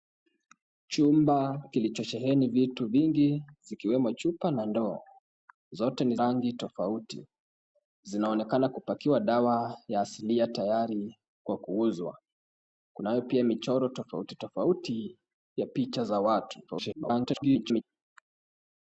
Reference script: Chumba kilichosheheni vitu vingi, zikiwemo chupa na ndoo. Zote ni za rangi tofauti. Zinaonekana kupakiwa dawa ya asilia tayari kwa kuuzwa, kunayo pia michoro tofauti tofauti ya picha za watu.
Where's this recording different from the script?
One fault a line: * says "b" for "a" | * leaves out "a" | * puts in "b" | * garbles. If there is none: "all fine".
* leaves out "za"
* garbles